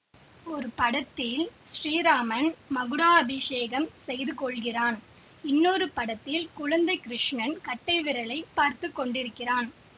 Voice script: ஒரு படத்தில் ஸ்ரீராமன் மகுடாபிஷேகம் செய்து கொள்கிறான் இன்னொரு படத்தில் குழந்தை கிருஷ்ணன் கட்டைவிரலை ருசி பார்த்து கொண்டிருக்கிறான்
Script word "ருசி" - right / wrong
wrong